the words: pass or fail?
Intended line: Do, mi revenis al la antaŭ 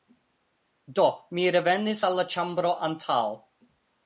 fail